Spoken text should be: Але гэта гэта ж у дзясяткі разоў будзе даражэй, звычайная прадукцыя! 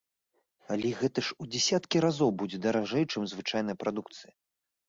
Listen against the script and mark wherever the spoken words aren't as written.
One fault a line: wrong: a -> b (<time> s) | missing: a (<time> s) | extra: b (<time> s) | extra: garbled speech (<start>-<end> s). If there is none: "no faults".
missing: гэта (1.2 s)
extra: чым (3.1 s)